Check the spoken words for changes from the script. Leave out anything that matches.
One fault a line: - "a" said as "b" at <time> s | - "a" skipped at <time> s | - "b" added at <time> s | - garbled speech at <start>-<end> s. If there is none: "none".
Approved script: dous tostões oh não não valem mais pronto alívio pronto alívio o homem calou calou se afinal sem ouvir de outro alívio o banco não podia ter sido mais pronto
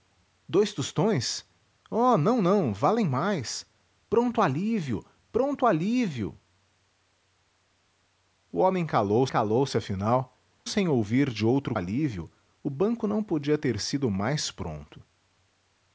none